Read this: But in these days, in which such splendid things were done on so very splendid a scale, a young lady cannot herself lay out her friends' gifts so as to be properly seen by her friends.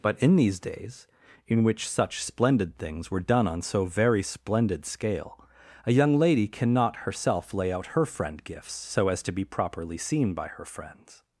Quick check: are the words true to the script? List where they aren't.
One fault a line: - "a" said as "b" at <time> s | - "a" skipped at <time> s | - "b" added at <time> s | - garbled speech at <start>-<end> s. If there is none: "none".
- "a" skipped at 4.8 s
- "friends" said as "friend" at 8.1 s